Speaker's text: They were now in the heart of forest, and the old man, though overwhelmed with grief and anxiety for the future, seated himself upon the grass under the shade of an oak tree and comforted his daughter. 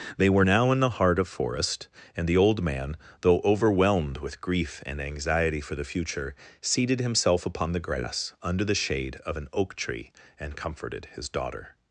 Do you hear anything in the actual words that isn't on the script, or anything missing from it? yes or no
no